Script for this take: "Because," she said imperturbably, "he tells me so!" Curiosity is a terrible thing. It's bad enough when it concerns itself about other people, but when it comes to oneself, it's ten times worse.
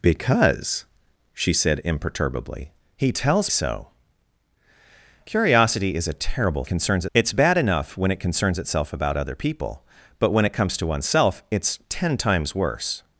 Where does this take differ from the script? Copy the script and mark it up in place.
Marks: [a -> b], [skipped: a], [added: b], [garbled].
"Because," she said imperturbably, "he tells [skipped: me] so!" Curiosity is a terrible [thing. -> concerns] It's bad enough when it concerns itself about other people, but when it comes to oneself, it's ten times worse.